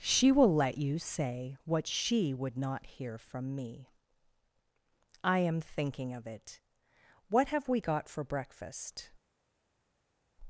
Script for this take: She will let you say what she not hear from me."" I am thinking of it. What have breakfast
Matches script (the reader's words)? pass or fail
fail